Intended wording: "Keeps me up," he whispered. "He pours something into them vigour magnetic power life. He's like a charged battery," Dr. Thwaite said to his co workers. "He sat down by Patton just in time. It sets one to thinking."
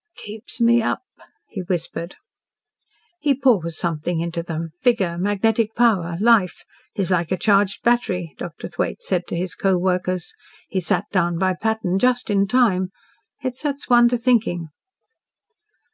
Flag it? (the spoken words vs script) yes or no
no